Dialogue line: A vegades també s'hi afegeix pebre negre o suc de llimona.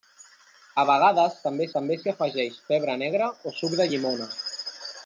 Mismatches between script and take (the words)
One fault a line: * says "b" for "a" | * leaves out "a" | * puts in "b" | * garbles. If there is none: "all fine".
* puts in "també"